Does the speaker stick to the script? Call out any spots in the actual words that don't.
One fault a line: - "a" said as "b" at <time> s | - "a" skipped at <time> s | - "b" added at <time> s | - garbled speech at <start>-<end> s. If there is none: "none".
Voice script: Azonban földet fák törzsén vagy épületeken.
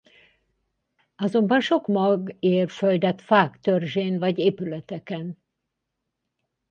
- "sok mag ér" added at 1.6 s